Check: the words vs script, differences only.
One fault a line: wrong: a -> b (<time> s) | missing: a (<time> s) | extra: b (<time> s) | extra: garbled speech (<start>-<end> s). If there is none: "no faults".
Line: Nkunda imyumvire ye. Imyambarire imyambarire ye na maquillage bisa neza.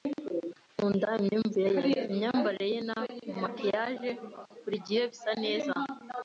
missing: imyambarire (2.7 s)
extra: buri gihe (4.6 s)